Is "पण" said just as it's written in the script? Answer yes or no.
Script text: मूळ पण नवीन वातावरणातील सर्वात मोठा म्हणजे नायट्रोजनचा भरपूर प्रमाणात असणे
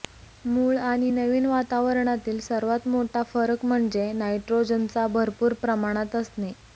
no